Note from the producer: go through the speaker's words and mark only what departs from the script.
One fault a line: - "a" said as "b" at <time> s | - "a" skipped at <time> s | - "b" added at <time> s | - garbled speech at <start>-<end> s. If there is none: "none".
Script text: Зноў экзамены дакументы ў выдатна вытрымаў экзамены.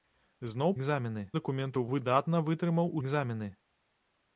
none